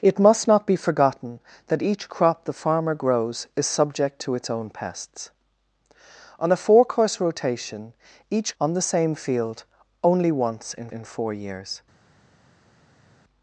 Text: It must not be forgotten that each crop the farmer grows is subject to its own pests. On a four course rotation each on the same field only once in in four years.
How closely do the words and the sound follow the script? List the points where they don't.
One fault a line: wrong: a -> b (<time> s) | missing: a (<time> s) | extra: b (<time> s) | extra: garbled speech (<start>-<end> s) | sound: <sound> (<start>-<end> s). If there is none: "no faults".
no faults